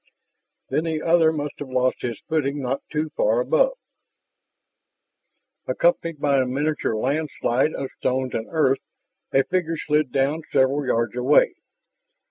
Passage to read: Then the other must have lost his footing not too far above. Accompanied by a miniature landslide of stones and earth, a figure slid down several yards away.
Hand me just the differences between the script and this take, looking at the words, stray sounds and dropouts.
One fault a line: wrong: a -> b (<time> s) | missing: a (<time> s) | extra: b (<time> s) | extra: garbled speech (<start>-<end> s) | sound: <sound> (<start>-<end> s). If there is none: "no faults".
no faults